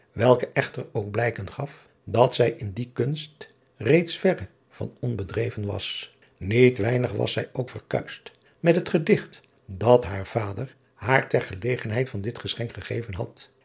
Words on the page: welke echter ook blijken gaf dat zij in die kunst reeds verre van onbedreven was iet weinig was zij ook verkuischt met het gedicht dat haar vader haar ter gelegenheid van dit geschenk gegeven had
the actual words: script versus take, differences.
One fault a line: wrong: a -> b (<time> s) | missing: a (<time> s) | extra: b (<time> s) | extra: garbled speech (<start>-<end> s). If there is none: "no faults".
no faults